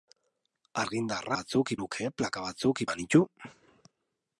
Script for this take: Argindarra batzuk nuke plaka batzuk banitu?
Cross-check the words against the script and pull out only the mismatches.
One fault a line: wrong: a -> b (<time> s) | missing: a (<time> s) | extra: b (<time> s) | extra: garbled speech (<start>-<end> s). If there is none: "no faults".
no faults